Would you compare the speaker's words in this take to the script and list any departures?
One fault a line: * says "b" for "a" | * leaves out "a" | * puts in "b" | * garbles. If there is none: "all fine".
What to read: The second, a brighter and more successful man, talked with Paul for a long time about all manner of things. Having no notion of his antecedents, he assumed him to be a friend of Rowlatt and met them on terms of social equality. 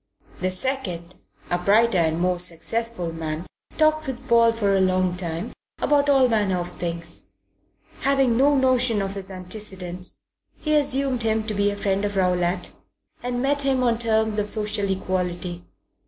* says "him" for "them"